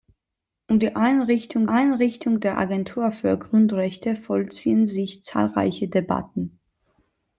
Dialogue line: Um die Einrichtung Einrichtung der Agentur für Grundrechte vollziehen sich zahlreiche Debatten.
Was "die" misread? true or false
false